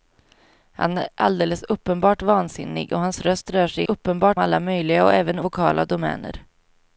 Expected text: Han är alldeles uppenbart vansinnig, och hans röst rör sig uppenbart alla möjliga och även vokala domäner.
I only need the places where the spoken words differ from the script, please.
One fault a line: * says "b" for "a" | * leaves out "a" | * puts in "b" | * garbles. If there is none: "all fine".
all fine